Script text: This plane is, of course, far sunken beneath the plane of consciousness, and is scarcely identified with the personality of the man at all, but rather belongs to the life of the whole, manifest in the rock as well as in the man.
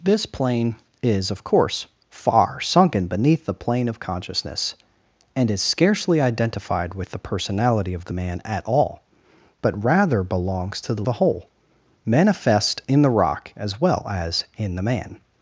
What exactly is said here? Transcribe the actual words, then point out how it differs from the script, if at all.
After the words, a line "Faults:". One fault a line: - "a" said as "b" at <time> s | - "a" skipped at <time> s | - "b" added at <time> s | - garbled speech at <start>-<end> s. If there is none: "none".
This plane is, of course, far sunken beneath the plane of consciousness, and is scarcely identified with the personality of the man at all, but rather belongs to the the whole, manifest in the rock as well as in the man.
Faults:
- "life of" skipped at 11.0 s